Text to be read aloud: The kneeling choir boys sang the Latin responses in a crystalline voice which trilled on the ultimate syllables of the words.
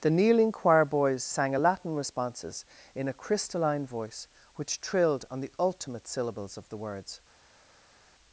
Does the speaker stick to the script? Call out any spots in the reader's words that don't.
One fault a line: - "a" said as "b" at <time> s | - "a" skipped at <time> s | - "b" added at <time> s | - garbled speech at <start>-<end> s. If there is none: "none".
- "the" said as "a" at 1.5 s